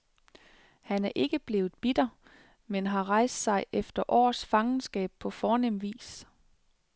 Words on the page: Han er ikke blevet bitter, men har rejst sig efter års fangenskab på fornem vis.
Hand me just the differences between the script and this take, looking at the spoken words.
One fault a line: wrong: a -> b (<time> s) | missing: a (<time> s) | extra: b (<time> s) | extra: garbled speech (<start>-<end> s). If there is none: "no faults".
no faults